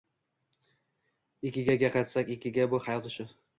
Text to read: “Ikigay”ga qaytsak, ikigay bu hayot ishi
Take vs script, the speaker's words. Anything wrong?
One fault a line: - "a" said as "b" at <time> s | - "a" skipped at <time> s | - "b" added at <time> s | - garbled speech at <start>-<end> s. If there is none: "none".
none